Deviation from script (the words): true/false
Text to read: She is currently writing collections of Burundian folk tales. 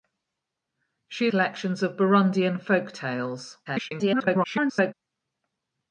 true